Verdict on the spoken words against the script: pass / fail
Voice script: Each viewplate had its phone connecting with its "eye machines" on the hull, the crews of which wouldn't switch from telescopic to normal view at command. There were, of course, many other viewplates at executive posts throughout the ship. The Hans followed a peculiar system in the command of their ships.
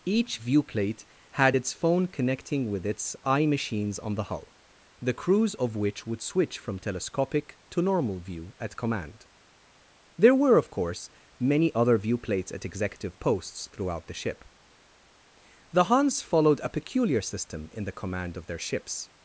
fail